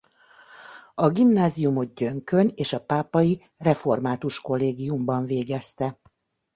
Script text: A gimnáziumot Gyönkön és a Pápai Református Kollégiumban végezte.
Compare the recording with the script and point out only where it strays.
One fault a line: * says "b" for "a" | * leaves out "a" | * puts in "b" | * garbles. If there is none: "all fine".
all fine